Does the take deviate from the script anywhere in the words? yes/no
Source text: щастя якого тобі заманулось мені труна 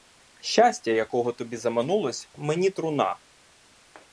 no